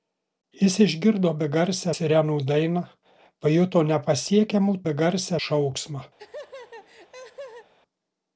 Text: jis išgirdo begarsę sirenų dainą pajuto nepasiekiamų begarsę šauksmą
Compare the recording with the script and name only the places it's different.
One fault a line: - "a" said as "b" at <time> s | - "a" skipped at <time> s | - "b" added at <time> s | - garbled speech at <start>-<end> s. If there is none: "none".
none